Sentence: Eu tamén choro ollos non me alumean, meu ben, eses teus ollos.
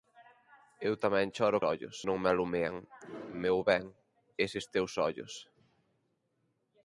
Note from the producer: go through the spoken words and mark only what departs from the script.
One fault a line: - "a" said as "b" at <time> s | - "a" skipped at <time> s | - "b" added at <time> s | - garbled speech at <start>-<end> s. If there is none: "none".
none